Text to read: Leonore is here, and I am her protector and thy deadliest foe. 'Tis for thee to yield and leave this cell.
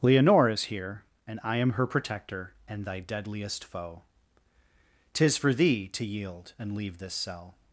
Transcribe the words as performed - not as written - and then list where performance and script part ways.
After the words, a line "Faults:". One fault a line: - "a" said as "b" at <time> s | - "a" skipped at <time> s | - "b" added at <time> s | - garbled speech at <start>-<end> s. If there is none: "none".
Leonore is here, and I am her protector and thy deadliest foe. 'Tis for thee to yield and leave this cell.
Faults:
none